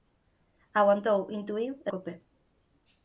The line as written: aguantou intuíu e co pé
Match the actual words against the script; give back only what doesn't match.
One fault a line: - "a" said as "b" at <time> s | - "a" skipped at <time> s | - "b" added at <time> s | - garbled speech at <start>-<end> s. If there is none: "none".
none